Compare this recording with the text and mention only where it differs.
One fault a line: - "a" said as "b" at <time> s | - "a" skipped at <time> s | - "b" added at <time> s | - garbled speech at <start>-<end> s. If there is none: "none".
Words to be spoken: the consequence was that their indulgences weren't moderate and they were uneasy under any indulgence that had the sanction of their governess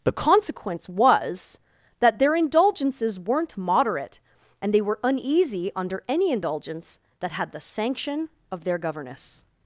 none